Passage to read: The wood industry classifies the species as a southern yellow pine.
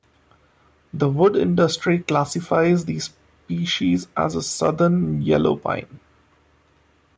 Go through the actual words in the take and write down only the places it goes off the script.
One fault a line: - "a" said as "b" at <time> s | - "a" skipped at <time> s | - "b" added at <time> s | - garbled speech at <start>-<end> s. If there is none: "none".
none